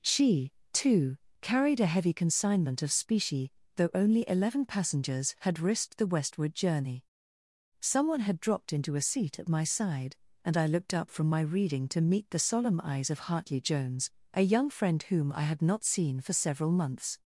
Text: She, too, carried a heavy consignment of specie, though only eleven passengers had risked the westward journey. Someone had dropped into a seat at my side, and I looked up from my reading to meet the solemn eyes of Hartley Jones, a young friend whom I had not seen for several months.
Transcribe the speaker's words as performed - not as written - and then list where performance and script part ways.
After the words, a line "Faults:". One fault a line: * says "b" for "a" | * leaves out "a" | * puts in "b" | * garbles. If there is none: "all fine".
She, too, carried a heavy consignment of specie, though only eleven passengers had risked the westward journey. Someone had dropped into a seat at my side, and I looked up from my reading to meet the solemn eyes of Hartley Jones, a young friend whom I had not seen for several months.
Faults:
all fine